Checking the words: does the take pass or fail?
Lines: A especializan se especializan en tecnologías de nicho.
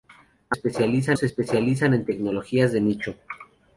pass